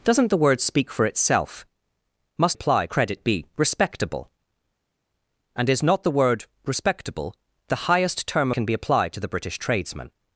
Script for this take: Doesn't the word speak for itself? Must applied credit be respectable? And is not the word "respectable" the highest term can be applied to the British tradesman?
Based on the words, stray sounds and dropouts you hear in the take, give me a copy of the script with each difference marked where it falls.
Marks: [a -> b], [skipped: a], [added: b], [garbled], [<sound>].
Doesn't the word speak for itself? Must applied credit be respectable? And is not the word "respectable" the highest term can be applied to the British tradesman?